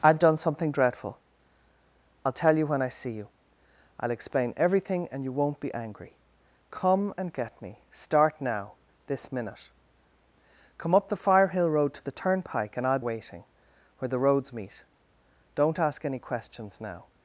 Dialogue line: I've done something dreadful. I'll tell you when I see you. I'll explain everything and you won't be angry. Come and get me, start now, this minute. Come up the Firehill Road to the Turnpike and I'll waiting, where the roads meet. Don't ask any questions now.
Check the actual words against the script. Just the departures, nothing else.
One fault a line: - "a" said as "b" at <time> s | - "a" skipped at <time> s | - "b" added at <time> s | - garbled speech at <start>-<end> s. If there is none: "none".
none